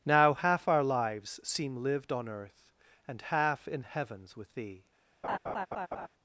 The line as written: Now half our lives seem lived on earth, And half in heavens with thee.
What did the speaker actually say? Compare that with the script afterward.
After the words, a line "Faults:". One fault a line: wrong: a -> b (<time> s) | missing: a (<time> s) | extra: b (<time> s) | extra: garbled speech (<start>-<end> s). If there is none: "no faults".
Now half our lives seem lived on earth, And half in heavens with thee.
Faults:
no faults